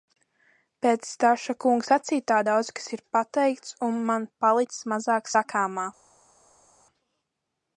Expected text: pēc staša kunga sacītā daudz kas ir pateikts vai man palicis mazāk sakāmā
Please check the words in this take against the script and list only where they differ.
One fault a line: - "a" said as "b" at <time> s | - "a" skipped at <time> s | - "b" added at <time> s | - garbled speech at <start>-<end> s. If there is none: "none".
- "vai" said as "un" at 3.9 s